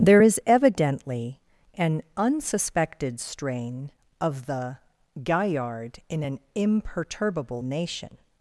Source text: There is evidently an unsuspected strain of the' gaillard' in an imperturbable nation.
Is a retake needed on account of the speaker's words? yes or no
no